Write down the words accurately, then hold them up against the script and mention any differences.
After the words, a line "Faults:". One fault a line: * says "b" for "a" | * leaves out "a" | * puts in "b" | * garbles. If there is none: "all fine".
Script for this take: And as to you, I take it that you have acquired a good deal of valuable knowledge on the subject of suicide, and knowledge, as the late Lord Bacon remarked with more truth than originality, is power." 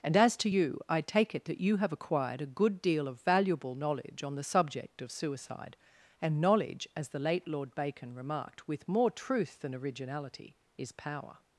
And as to you, I take it that you have acquired a good deal of valuable knowledge on the subject of suicide, and knowledge, as the late Lord Bacon remarked with more truth than originality, is power."
Faults:
all fine